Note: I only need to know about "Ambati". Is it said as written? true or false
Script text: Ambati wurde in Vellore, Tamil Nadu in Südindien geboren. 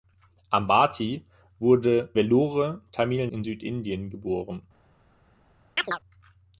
true